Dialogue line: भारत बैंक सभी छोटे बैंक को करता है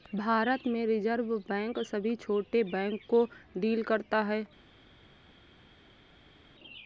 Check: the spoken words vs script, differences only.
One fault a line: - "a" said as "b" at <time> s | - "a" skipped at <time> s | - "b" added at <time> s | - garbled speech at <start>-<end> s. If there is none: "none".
- "में रिज़र्व" added at 0.7 s
- "डील" added at 3.6 s